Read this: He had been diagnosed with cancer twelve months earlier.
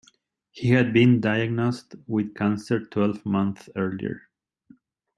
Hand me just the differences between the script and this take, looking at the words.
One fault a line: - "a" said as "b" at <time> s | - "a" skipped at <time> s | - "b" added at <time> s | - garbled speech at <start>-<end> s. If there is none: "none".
none